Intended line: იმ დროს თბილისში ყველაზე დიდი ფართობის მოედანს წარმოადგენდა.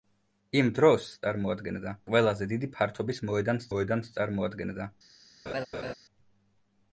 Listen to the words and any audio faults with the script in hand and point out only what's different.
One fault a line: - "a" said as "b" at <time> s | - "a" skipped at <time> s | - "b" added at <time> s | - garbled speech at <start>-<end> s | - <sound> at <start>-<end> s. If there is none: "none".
- "თბილისში" said as "წარმოადგენდა" at 1.2 s
- "მოედანს" added at 3.7 s
- laugh at 5.5-5.9 s